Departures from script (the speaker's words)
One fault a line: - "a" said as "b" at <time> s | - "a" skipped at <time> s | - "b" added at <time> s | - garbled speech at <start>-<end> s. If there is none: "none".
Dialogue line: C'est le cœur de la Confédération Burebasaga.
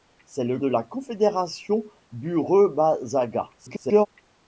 - "cœur" skipped at 0.6 s
- garbled speech at 3.6-4.1 s